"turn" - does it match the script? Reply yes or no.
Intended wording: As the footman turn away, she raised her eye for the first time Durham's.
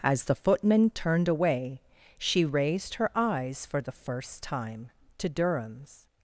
no